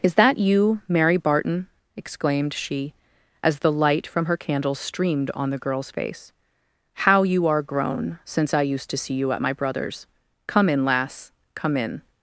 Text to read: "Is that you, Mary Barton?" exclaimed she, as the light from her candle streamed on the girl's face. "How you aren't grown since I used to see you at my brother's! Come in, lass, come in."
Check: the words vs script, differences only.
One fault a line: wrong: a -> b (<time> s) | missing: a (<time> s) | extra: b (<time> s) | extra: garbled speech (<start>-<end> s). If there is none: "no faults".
wrong: aren't -> are (7.5 s)